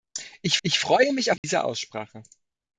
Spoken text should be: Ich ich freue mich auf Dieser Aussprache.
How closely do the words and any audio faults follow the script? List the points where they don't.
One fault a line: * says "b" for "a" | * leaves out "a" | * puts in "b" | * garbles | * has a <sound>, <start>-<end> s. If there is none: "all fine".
* has a dropout, 1.4-1.4 s